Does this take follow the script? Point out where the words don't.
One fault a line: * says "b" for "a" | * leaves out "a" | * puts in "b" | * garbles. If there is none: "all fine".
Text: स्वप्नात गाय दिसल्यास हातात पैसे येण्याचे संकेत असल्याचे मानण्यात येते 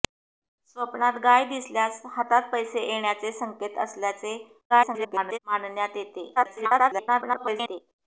* garbles
* garbles